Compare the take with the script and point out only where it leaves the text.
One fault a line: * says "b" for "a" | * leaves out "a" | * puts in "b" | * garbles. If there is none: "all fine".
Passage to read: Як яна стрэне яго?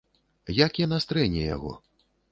all fine